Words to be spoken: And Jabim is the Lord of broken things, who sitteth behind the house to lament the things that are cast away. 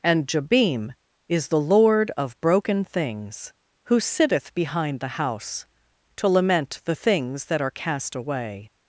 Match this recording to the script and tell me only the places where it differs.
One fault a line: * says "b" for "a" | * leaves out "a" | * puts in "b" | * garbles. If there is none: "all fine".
all fine